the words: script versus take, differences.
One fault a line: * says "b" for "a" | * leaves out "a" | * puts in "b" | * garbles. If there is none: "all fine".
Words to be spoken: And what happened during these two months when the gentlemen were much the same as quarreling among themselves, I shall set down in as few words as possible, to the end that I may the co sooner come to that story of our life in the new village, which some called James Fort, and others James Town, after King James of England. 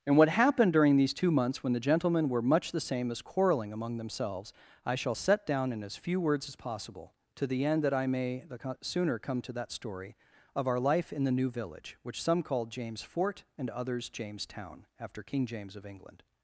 all fine